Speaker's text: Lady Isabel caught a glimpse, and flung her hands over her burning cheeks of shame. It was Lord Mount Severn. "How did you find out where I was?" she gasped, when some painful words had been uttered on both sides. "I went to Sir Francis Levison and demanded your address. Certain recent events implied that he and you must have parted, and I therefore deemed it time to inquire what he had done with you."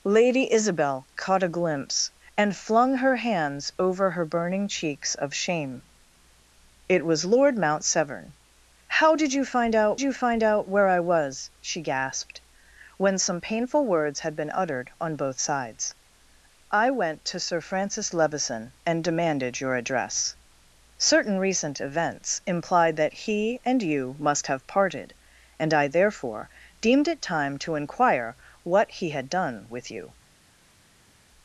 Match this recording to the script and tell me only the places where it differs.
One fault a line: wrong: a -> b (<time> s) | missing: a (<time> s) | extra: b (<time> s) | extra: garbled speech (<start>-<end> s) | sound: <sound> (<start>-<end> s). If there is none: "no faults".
extra: you find out (10.0 s)